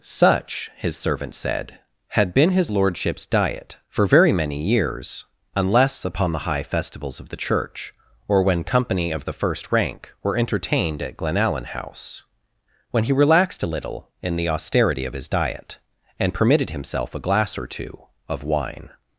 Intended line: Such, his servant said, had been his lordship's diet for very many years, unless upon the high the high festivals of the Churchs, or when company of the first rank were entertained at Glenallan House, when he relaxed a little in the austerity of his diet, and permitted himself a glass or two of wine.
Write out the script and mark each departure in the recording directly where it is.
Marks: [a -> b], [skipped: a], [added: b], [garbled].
Such, his servant said, had been his lordship's diet for very many years, unless upon the high [skipped: the high] festivals of the [Churchs, -> Church] or when company of the first rank were entertained at Glenallan House, when he relaxed a little in the austerity of his diet, and permitted himself a glass or two of wine.